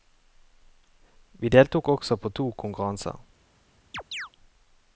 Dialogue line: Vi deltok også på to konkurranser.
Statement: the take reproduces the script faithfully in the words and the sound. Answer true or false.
false